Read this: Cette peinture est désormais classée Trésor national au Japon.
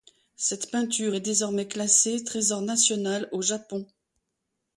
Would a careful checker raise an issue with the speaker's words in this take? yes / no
no